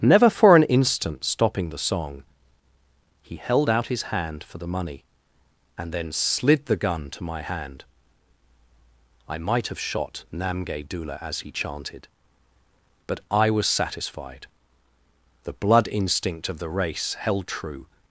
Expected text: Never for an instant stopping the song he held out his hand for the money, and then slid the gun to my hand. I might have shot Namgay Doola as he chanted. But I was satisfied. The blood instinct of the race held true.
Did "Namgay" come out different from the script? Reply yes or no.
no